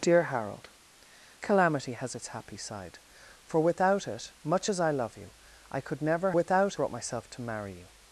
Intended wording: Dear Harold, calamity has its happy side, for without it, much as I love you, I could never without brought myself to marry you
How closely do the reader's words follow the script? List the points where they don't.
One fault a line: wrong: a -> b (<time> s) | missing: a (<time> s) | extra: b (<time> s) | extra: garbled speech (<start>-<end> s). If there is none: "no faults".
no faults